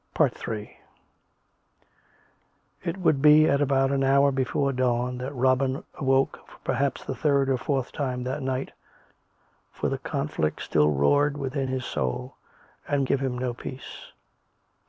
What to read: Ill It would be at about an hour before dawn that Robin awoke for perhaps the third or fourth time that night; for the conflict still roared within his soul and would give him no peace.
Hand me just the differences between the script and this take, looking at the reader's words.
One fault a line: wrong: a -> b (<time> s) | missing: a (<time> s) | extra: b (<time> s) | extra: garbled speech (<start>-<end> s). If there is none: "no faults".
missing: would (13.1 s)